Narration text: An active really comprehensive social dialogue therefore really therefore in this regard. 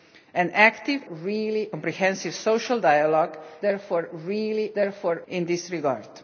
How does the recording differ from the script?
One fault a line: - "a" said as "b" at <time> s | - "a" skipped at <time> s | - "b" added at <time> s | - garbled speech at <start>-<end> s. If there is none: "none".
none